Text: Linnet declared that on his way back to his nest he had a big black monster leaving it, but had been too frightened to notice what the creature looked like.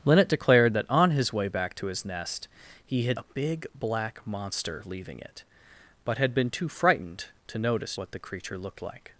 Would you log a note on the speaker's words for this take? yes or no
no